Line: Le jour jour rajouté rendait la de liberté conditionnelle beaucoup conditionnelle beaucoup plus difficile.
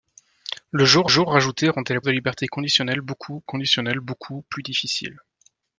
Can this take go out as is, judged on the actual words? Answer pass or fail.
pass